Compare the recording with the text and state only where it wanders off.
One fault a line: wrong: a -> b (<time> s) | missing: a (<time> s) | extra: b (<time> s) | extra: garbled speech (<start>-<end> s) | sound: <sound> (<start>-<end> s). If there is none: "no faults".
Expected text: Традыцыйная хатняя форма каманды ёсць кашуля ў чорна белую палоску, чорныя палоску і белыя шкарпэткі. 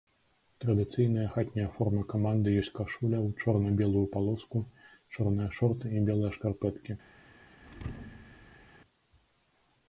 wrong: палоску -> шорты (5.6 s)
sound: thud (7.6-8.7 s)